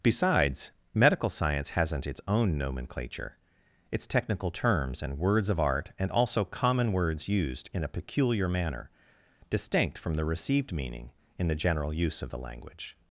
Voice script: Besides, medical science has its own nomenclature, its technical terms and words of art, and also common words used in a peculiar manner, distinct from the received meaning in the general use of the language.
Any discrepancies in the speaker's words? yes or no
yes